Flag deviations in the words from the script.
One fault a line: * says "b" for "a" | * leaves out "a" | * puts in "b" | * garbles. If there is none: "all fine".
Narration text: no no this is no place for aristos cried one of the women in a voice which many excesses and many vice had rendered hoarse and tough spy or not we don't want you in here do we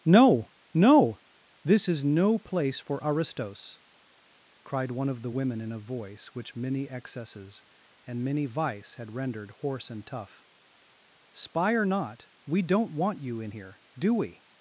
all fine